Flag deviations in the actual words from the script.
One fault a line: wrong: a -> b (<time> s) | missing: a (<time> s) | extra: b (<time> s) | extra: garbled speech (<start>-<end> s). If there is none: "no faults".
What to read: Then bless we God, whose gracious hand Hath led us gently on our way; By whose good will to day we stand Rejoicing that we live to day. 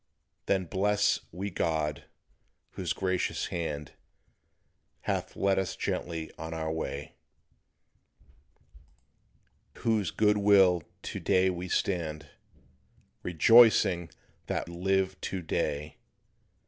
missing: By (7.2 s)
missing: we (14.7 s)